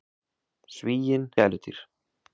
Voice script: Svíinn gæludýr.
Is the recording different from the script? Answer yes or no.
no